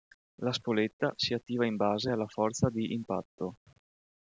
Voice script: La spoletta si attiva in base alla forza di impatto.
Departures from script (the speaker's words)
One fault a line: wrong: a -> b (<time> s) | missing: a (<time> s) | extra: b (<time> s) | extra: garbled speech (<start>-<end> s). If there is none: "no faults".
no faults